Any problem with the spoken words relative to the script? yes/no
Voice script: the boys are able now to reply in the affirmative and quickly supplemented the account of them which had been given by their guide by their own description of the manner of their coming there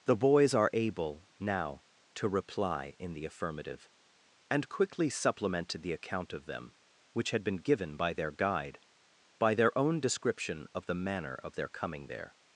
no